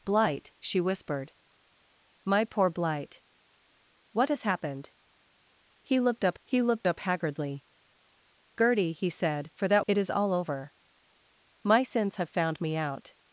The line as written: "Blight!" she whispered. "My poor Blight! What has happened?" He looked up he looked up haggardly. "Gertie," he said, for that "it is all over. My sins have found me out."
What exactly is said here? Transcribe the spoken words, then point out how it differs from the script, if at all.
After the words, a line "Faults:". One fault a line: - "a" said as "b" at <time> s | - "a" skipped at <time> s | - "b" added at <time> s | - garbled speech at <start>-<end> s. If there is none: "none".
"Blight!" she whispered. "My poor Blight! What has happened?" He looked up he looked up haggardly. "Gertie," he said, for that "it is all over. My sins have found me out."
Faults:
none